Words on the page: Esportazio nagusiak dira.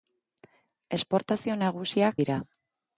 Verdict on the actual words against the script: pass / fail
pass